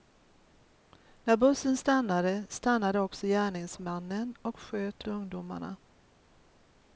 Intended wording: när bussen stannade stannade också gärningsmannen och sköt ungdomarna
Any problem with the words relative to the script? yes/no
no